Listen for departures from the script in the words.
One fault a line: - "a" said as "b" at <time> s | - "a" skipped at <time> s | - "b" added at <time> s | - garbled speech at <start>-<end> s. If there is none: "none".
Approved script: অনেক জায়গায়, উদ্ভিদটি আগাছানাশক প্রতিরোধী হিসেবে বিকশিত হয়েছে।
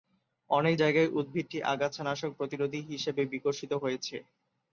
none